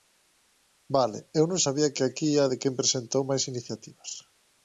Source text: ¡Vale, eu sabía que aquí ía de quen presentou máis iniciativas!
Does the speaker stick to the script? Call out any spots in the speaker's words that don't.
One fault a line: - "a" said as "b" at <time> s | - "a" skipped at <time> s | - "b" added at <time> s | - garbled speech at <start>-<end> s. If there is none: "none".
- "non" added at 1.5 s